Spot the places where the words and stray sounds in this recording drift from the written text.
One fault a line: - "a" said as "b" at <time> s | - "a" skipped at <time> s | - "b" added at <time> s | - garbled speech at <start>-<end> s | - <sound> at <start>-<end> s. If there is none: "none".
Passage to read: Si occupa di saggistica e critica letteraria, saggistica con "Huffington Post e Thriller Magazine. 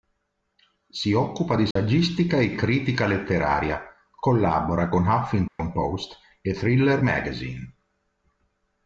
- dropout at 1.7-1.8 s
- "saggistica" said as "collabora" at 4.1 s
- dropout at 5.5-5.6 s